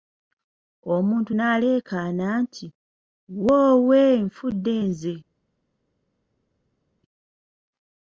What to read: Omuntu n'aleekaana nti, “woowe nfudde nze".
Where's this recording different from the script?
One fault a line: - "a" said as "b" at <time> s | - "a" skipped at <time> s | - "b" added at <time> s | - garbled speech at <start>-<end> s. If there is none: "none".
none